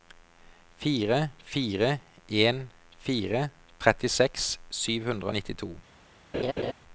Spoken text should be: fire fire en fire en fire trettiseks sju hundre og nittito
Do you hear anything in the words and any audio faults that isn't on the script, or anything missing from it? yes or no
yes